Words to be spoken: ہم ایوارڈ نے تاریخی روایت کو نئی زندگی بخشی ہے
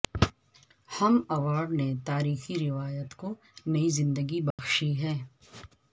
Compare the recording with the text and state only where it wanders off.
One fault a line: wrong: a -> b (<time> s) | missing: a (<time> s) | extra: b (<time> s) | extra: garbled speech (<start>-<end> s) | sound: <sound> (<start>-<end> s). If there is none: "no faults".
sound: dropout (4.5-4.6 s)